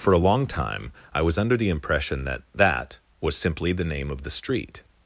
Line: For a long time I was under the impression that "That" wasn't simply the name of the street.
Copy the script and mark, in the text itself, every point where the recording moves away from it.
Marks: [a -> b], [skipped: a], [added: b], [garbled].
For a long time I was under the impression that "That" [wasn't -> was] simply the name of the street.